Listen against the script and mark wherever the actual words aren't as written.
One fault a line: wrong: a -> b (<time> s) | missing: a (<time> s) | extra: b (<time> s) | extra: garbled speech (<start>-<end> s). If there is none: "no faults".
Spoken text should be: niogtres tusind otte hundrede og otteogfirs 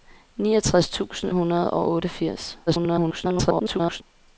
missing: otte (1.3 s)
extra: garbled speech (2.7-4.0 s)